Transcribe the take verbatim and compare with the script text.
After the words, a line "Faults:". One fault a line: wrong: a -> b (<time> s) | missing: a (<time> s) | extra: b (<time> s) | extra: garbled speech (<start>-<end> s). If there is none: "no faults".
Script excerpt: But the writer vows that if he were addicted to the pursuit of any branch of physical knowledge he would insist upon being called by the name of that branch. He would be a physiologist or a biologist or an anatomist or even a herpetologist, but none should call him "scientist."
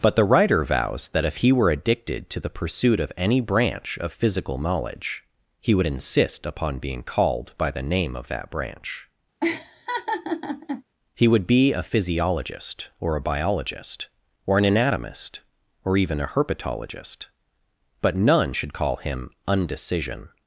But the writer vows that if he were addicted to the pursuit of any branch of physical knowledge he would insist upon being called by the name of that branch. He would be a physiologist or a biologist or an anatomist or even a herpetologist, but none should call him "undecision."
Faults:
wrong: scientist -> undecision (19.5 s)